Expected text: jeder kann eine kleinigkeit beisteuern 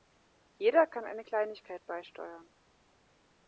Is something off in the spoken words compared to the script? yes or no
no